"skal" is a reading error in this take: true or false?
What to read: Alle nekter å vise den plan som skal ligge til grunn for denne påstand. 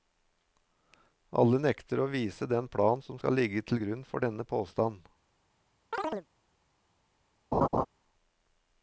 false